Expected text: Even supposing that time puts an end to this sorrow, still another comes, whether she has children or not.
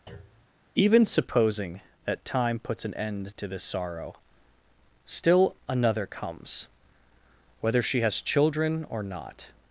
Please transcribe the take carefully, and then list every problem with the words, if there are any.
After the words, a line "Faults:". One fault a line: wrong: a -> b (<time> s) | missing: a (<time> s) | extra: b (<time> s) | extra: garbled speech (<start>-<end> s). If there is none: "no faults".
Even supposing that time puts an end to this sorrow, still another comes, whether she has children or not.
Faults:
no faults